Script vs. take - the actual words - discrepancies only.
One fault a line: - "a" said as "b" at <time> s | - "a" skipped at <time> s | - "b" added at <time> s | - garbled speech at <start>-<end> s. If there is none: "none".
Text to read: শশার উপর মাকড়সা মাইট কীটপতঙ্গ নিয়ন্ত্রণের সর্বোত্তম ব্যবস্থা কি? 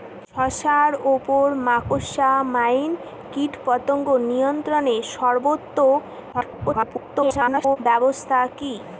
- garbled speech at 6.3-7.8 s